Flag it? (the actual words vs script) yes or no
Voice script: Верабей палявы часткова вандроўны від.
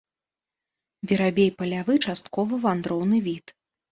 no